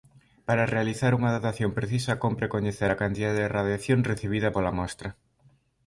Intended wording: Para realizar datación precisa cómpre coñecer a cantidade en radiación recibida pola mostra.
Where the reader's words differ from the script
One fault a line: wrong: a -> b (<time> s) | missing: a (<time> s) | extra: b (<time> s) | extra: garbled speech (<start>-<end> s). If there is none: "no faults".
extra: unha (1.2 s)
wrong: en -> de (3.4 s)